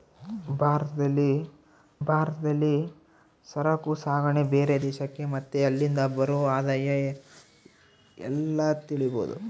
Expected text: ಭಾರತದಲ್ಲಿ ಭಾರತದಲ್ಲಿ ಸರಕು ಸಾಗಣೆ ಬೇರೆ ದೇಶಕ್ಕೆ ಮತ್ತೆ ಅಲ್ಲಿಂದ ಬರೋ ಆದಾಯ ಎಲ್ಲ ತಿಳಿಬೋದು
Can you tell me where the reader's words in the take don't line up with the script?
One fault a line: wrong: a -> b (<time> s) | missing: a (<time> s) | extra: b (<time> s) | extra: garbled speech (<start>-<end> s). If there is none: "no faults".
no faults